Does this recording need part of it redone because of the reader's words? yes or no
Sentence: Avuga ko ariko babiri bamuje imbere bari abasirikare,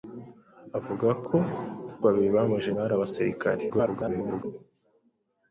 yes